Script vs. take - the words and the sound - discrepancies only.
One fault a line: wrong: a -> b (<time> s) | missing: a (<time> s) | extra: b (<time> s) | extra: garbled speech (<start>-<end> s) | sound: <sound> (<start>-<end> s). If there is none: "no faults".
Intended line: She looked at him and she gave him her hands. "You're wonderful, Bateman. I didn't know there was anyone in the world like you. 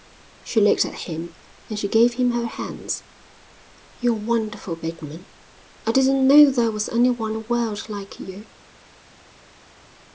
missing: in (7.3 s)